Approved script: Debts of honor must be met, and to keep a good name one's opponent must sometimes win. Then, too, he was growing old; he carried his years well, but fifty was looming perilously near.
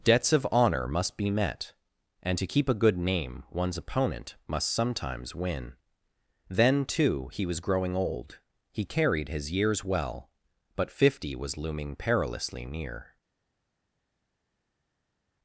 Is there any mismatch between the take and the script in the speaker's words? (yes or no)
no